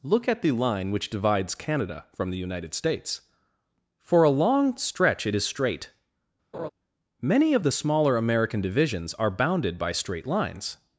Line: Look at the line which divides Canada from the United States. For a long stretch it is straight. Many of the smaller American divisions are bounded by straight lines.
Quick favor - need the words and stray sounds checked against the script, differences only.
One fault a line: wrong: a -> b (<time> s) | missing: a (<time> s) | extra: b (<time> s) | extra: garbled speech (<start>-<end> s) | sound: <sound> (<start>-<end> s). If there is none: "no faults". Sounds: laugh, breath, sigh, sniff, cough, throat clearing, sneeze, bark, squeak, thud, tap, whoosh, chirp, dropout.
sound: laugh (6.5-6.7 s)